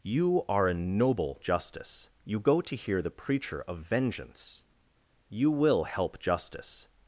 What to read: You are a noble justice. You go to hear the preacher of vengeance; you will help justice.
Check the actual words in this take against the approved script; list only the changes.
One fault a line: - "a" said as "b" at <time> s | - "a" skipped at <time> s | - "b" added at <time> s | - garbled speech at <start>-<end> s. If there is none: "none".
none